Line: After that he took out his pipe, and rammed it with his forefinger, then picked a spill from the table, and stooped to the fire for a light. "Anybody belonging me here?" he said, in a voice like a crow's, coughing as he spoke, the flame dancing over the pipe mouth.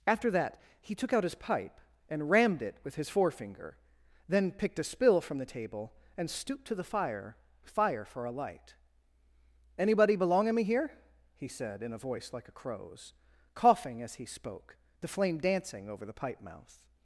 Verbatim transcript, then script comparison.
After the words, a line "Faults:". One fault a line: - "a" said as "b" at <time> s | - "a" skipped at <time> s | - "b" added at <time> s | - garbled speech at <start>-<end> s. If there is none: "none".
After that he took out his pipe, and rammed it with his forefinger, then picked a spill from the table, and stooped to the fire fire for a light. "Anybody belonging me here?" he said, in a voice like a crow's, coughing as he spoke, the flame dancing over the pipe mouth.
Faults:
- "fire" added at 7.6 s